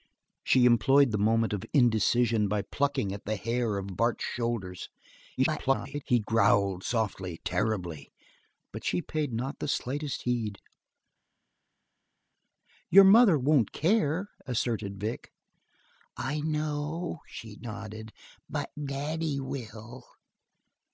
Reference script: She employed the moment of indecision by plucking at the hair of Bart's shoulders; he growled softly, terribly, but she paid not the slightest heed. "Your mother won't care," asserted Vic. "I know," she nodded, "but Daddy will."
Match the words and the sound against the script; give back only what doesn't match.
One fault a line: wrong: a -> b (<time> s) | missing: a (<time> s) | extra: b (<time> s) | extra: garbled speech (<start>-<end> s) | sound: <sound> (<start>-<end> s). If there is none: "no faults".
extra: garbled speech (5.4-6.0 s)